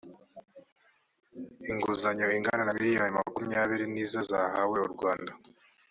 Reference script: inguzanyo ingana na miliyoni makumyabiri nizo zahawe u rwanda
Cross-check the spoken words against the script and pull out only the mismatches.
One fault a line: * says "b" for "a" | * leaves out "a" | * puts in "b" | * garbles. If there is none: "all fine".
all fine